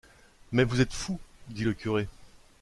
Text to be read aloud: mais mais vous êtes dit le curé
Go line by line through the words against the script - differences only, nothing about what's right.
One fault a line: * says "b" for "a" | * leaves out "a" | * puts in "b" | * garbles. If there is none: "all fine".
* leaves out "mais"
* puts in "fou"